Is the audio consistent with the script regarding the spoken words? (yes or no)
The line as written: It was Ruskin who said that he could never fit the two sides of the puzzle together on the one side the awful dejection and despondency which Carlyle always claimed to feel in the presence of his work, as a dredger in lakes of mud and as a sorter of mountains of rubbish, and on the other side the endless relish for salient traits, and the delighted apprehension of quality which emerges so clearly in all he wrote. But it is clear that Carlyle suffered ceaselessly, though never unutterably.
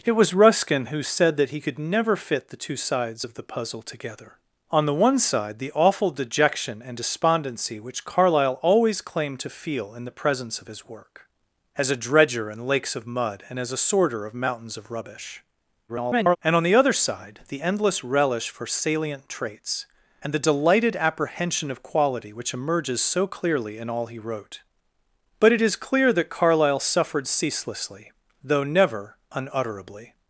no